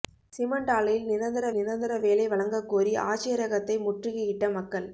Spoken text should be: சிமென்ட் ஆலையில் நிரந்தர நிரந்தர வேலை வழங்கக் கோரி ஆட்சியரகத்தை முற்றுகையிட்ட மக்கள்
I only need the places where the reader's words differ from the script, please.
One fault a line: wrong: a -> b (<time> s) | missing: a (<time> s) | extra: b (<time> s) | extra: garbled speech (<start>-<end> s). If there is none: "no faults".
no faults